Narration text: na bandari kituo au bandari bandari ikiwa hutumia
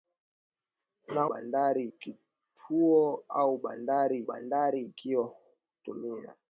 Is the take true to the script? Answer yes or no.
yes